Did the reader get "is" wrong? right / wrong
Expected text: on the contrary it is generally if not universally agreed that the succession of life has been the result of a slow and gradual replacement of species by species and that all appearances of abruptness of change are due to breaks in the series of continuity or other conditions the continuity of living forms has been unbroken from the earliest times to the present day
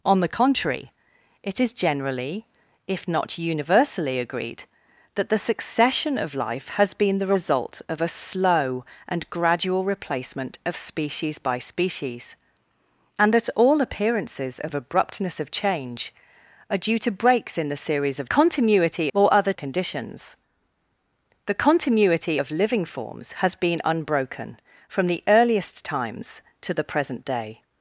right